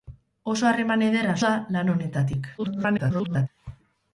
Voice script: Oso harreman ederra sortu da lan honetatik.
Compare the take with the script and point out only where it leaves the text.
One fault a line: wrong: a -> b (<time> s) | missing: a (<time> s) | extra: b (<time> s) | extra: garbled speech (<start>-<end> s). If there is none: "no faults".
missing: sortu (1.4 s)
extra: garbled speech (2.6-3.5 s)